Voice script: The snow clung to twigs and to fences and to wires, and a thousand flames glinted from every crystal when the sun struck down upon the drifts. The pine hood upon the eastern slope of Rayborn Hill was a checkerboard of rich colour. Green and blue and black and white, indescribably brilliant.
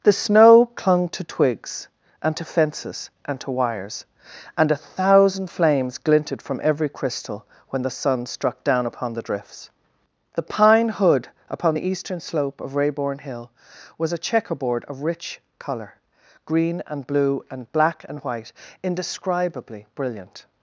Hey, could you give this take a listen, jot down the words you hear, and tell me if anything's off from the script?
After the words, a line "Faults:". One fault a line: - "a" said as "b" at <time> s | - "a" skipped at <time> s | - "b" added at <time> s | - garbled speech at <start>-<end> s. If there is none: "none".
The snow clung to twigs and to fences and to wires, and a thousand flames glinted from every crystal when the sun struck down upon the drifts. The pine hood upon the eastern slope of Rayborn Hill was a checkerboard of rich colour. Green and blue and black and white, indescribably brilliant.
Faults:
none